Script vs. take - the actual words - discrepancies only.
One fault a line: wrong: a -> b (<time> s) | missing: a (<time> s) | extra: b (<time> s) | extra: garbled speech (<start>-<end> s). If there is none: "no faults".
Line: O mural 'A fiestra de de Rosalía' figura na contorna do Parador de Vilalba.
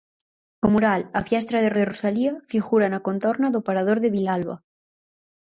no faults